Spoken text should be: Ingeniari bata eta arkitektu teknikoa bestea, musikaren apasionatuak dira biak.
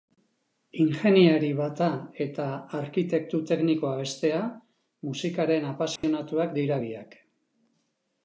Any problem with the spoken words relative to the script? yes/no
no